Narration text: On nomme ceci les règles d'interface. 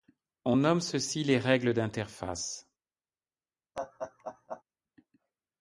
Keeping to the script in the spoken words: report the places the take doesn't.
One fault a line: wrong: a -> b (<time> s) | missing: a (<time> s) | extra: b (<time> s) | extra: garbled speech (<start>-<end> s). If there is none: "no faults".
no faults